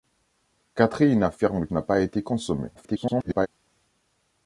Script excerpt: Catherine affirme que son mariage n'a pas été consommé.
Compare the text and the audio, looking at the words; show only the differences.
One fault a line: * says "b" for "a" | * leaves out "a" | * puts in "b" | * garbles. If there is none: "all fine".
* leaves out "que son mariage"
* garbles